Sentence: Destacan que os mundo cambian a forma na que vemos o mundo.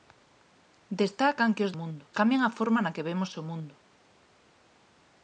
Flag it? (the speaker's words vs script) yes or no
no